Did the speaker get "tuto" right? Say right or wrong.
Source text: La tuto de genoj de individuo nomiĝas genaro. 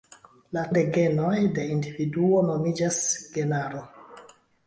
wrong